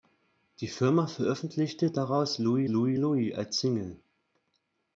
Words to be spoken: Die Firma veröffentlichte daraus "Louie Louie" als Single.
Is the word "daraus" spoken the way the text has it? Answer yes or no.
yes